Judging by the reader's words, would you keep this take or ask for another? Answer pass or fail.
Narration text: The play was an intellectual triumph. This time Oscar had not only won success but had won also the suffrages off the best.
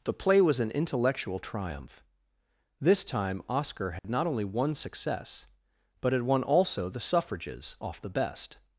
pass